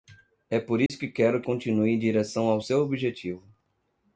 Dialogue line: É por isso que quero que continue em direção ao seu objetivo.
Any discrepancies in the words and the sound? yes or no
yes